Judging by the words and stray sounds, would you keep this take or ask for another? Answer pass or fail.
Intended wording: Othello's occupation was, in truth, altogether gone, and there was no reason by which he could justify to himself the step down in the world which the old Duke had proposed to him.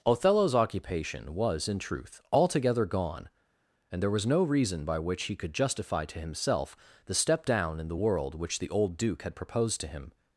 pass